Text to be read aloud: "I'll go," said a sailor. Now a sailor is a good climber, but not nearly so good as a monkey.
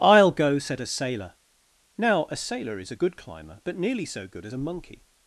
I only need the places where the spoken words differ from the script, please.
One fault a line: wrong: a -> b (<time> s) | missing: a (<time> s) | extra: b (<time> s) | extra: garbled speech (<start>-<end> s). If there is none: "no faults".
missing: not (3.8 s)